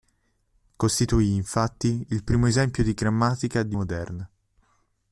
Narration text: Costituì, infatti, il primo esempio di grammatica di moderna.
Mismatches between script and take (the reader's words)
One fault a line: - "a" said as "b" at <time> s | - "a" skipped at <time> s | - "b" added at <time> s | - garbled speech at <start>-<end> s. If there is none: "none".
none